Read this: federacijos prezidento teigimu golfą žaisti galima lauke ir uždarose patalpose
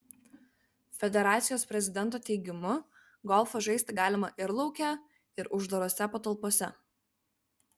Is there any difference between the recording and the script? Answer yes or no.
yes